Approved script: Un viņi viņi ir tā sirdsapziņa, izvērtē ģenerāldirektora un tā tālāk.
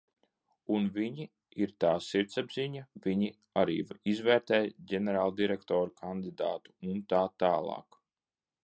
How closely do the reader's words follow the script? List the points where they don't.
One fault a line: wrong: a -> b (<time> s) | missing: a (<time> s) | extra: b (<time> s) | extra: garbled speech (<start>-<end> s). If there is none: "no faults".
missing: viņi (1.3 s)
extra: viņi arī (3.0 s)
extra: kandidātu (6.0 s)